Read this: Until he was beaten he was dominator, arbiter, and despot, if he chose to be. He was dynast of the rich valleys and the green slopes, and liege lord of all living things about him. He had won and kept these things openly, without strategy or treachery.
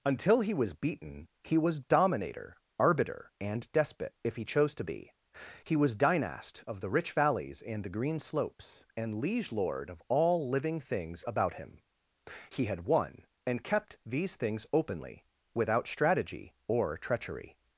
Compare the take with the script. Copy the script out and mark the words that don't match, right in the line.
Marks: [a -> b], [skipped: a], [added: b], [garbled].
Until he was beaten he was dominator, arbiter, and despot, if he chose to be. He was dynast of the rich valleys and the green slopes, and liege lord of all living things about him. He had won and kept these things openly, without strategy or treachery.